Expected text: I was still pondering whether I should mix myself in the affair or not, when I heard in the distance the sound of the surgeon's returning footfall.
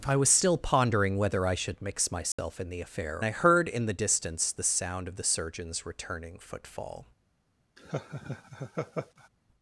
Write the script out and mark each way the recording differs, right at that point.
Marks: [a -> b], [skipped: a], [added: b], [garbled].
I was still pondering whether I should mix myself in the affair [skipped: or not, when] I heard in the distance the sound of the surgeon's returning footfall.